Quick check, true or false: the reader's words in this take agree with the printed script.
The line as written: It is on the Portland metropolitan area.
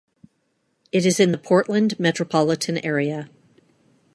false